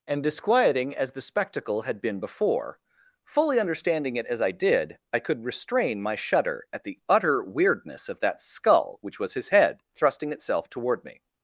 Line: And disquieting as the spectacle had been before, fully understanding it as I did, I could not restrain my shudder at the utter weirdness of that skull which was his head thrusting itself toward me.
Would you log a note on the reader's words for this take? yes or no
yes